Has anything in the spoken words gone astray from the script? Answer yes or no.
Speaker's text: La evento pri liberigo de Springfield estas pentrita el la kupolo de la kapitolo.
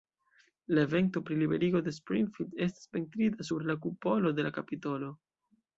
yes